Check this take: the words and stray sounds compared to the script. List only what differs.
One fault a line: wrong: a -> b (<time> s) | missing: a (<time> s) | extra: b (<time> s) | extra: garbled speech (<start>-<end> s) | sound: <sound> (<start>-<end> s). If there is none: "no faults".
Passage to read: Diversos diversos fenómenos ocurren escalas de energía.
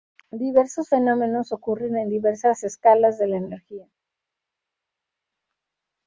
missing: diversos (0.9 s)
extra: en diversas (2.0 s)
extra: la (3.3 s)